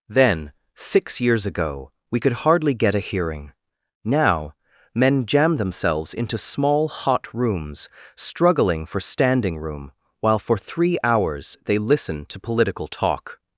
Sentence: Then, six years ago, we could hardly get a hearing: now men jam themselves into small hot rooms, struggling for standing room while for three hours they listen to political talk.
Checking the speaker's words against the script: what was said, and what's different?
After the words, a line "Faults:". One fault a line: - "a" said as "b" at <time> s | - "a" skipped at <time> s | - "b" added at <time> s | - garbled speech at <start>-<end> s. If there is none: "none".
Then, six years ago, we could hardly get a hearing: now men jam themselves into small hot rooms, struggling for standing room while for three hours they listen to political talk.
Faults:
none